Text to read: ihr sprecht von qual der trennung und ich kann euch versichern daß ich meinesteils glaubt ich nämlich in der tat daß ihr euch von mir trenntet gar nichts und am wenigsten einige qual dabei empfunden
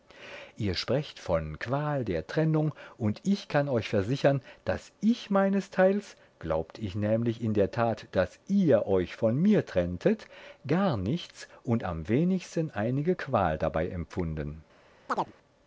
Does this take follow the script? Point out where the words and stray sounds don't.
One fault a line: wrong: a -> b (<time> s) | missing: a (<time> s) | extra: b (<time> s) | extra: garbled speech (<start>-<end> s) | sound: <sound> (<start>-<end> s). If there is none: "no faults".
sound: chirp (15.1-15.3 s)